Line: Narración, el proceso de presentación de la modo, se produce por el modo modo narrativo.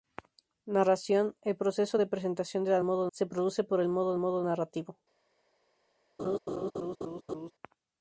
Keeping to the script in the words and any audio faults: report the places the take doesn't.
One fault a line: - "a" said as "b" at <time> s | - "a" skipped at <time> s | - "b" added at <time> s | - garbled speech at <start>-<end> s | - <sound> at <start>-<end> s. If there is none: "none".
- laugh at 6.2-7.5 s